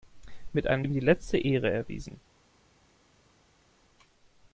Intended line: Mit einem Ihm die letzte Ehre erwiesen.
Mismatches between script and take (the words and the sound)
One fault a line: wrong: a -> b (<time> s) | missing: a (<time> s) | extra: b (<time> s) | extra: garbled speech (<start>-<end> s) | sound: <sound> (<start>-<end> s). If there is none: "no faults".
no faults